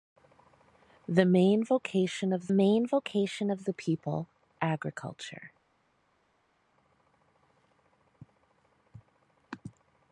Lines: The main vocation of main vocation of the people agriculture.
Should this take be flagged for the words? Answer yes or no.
no